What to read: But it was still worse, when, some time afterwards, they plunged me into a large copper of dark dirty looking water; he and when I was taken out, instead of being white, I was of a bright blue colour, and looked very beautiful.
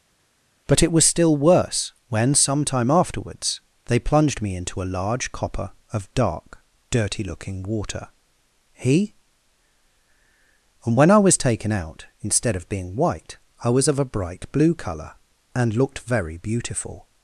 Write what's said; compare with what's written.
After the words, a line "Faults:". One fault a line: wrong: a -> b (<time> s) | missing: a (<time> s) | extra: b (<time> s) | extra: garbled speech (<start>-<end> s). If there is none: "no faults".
But it was still worse, when, some time afterwards, they plunged me into a large copper of dark dirty looking water; he and when I was taken out, instead of being white, I was of a bright blue colour, and looked very beautiful.
Faults:
no faults